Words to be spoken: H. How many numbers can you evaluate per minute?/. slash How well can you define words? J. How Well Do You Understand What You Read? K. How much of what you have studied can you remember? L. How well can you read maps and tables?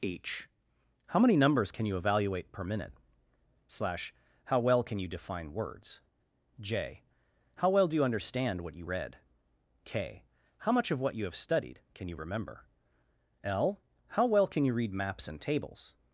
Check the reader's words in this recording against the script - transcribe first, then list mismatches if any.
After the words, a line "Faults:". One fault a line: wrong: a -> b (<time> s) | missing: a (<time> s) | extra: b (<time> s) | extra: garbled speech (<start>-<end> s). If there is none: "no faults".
H. How many numbers can you evaluate per minute?/. slash How well can you define words? J. How Well Do You Understand What You Read? K. How much of what you have studied can you remember? L. How well can you read maps and tables?
Faults:
no faults